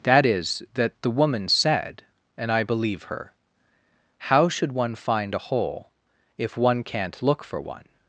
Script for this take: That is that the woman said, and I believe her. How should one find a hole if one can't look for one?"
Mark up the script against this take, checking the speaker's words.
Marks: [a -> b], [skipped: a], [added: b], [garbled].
That is that the woman said, and I believe her. How should one find a hole if one can't look for one?"